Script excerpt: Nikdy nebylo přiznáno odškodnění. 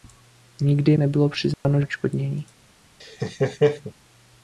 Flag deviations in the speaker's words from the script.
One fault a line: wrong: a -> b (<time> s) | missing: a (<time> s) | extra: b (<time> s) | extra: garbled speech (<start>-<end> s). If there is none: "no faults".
no faults